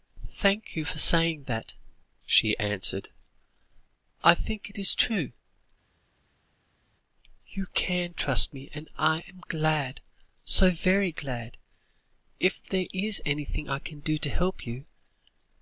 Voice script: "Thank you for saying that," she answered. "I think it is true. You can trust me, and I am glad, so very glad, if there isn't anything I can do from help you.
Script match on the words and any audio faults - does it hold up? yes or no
no